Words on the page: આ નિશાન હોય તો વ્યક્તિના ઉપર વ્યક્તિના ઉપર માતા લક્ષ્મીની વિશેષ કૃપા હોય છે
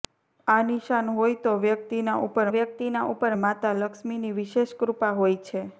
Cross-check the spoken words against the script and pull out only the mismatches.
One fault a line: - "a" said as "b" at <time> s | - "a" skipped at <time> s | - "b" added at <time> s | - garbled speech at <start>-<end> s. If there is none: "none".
none